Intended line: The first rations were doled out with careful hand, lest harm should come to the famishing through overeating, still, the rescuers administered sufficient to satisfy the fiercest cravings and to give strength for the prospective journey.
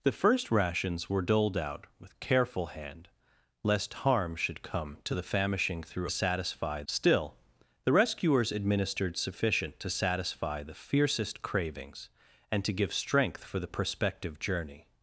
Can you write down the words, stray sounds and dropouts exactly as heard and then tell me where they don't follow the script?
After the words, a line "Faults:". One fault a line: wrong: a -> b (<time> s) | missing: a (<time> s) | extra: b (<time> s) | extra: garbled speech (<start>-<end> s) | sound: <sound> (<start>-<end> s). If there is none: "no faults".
The first rations were doled out with careful hand, lest harm should come to the famishing through satisfy, still, the rescuers administered sufficient to satisfy the fiercest cravings and to give strength for the prospective journey.
Faults:
wrong: overeating -> satisfy (6.1 s)